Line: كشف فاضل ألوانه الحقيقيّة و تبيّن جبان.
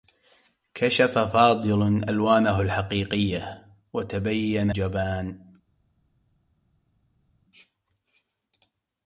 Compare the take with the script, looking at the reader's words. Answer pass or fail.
pass